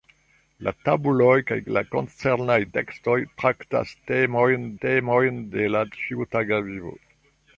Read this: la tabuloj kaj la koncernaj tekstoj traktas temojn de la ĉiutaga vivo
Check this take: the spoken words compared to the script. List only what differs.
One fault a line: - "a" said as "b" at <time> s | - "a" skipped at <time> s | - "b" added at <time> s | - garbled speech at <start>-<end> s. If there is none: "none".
- "temojn" added at 4.8 s